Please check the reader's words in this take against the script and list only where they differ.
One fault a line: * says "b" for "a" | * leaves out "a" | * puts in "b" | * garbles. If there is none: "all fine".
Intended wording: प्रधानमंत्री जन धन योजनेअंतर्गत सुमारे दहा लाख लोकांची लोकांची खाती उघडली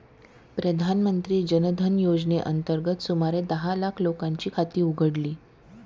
* leaves out "लोकांची"